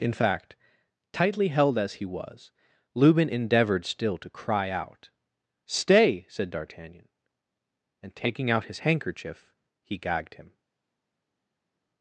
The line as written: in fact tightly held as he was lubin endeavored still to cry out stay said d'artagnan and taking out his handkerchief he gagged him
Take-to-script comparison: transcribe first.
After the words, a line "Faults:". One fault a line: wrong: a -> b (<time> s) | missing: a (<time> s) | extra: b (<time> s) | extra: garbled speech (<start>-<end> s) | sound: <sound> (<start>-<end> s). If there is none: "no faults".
in fact tightly held as he was lubin endeavored still to cry out stay said d'artagnan and taking out his handkerchief he gagged him
Faults:
no faults